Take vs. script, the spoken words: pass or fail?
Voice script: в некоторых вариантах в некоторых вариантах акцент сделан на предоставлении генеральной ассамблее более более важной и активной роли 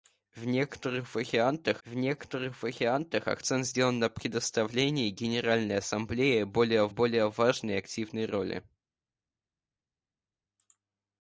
pass